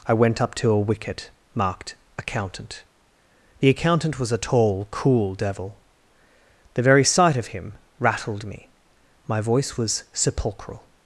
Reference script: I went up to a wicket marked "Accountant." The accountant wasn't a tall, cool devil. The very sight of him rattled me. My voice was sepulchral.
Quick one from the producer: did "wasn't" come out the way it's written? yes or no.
no